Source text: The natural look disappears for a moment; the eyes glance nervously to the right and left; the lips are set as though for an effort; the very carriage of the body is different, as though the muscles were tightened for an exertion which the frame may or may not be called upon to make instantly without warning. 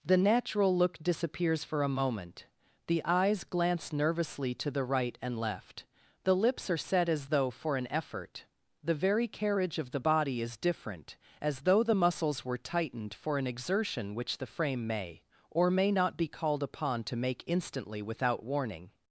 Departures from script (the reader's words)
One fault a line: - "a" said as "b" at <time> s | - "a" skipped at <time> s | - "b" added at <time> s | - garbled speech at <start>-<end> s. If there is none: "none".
none